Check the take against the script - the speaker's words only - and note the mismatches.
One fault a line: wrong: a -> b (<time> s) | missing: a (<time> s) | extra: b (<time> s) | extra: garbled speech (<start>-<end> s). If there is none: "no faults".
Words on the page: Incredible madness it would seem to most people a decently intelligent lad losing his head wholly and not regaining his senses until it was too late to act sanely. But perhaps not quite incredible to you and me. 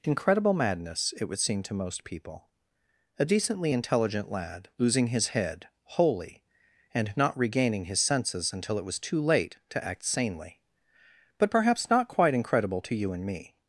no faults